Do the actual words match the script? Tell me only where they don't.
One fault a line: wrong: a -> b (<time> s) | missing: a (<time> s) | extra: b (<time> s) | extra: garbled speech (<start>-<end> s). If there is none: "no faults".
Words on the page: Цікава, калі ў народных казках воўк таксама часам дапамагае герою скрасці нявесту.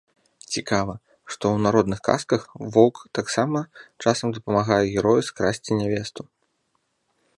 wrong: калі -> што (1.3 s)